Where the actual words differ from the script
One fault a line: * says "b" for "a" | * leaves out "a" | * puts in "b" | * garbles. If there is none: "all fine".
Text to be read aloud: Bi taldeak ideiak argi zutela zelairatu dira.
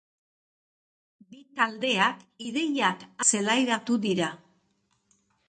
* leaves out "argi zutela"